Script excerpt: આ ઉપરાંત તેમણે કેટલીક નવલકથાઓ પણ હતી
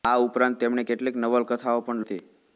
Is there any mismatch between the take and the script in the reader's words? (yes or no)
no